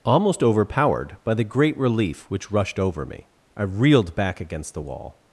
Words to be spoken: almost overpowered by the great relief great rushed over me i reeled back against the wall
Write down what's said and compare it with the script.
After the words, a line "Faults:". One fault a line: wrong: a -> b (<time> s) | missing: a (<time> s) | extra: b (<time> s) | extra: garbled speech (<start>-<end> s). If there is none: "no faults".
almost overpowered by the great relief which rushed over me i reeled back against the wall
Faults:
wrong: great -> which (2.3 s)